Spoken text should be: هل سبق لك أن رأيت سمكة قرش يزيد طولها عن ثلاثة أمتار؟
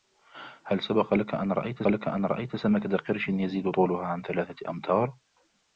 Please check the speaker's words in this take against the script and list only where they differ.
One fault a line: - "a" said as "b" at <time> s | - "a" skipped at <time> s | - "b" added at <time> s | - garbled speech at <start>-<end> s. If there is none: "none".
- "لك أن رأيت" added at 1.9 s